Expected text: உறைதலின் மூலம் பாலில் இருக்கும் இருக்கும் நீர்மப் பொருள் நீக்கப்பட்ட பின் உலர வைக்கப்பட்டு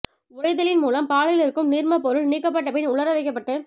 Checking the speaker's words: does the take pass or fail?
fail